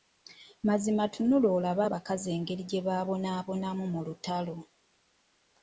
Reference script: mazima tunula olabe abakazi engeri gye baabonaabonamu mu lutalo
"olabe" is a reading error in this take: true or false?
false